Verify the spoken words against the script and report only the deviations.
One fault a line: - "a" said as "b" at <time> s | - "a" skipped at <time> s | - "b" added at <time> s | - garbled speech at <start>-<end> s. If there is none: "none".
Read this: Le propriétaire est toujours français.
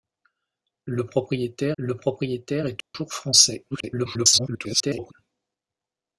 - "le propriétaire" added at 1.8 s
- garbled speech at 3.7-5.1 s